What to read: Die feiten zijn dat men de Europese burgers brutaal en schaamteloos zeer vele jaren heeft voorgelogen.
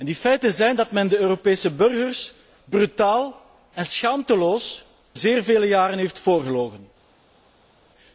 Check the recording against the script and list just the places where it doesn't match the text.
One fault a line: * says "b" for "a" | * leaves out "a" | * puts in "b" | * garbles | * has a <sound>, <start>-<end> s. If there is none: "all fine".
all fine